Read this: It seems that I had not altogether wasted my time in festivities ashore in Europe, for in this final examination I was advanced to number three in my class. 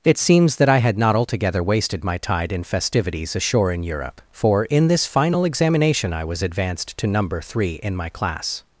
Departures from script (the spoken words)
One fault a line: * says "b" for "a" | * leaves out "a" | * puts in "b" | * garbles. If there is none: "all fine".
* says "tide" for "time"